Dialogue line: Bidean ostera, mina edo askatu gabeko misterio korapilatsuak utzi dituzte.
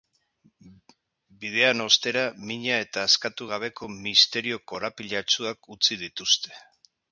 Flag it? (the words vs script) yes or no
yes